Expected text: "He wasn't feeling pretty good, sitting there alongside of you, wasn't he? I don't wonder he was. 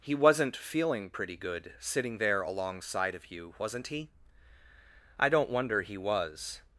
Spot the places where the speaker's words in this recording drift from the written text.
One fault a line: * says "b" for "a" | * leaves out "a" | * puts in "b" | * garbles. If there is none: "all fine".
all fine